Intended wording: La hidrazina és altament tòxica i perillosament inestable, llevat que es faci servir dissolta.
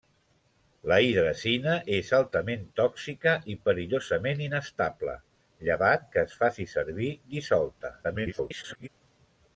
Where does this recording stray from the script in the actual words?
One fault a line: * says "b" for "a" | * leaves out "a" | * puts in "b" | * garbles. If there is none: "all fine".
* garbles